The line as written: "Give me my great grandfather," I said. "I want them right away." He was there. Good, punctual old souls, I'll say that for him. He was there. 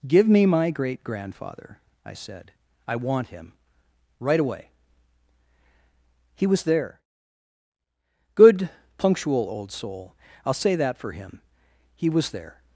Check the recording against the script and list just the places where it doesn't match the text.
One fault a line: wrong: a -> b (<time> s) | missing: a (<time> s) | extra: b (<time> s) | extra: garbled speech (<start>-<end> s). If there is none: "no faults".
wrong: them -> him (3.3 s)
wrong: souls -> soul (9.7 s)